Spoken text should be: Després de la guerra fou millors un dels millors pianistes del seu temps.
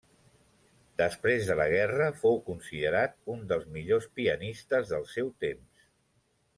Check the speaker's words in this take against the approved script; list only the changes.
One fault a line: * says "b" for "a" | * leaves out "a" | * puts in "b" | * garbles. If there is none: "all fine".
* says "considerat" for "millors"